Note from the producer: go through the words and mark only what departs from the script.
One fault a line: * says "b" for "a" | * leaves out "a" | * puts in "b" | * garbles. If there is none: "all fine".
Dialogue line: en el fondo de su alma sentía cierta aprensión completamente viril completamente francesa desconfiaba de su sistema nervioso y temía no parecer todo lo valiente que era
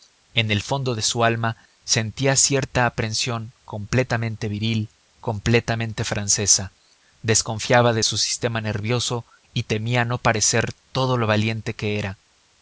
all fine